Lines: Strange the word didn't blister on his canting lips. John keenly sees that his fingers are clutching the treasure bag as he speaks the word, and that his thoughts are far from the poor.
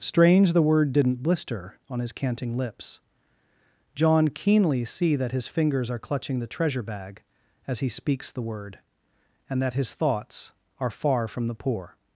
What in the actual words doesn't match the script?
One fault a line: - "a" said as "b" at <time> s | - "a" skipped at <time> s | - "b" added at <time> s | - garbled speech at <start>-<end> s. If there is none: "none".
- "sees" said as "see" at 4.8 s